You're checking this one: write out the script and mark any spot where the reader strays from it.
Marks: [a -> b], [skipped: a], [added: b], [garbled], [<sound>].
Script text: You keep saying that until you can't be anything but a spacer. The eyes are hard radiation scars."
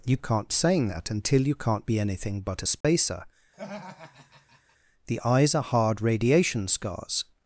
You [keep -> can't] saying that until you can't be anything but a spacer. [dropout] [laugh] The eyes are hard radiation scars."